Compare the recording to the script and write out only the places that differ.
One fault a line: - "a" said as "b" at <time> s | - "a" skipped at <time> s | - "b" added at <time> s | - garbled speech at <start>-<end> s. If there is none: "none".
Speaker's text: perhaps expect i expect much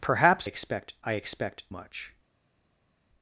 none